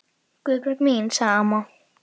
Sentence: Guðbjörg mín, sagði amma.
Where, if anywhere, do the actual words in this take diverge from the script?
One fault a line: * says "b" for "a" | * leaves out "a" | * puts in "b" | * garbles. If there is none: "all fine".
all fine